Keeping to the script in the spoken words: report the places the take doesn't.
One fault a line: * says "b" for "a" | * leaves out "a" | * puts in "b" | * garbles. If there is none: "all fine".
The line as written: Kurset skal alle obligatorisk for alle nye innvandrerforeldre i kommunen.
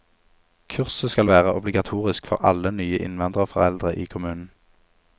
* says "være" for "alle"